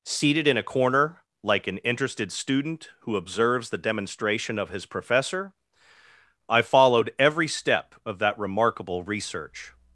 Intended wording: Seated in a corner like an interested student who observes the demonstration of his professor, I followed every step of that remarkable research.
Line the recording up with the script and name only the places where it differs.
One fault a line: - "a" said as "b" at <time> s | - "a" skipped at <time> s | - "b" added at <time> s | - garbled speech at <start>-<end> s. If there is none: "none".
none